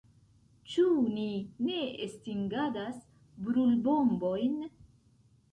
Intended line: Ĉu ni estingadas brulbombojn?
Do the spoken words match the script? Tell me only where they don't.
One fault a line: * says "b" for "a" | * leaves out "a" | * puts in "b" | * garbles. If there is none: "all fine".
* puts in "ne"